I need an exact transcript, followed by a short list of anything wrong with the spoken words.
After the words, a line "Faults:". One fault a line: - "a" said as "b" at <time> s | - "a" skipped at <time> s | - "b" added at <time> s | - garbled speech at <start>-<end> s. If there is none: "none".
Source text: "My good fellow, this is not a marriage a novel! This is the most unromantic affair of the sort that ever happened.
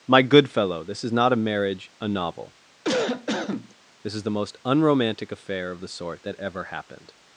"My good fellow, this is not a marriage a novel! This is the most unromantic affair of the sort that ever happened.
Faults:
none